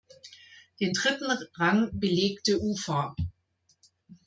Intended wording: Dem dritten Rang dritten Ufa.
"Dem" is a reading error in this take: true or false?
true